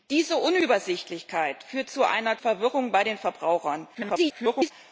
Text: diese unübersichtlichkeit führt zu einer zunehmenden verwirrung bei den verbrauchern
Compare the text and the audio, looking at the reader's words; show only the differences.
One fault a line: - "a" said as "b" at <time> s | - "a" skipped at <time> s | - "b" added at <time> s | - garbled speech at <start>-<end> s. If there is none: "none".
- "zunehmenden" skipped at 2.4 s
- garbled speech at 3.9-4.7 s